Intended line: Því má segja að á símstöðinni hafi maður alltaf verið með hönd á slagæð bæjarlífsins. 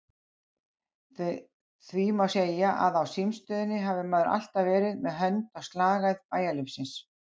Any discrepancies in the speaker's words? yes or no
no